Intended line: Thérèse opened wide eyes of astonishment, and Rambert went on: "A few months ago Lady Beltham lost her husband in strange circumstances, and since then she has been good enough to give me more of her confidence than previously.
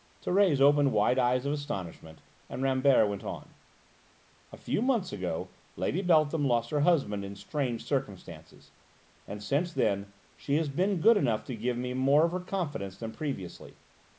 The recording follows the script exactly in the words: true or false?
true